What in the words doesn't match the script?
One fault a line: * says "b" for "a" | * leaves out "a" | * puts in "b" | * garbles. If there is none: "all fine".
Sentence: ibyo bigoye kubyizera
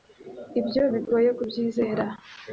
all fine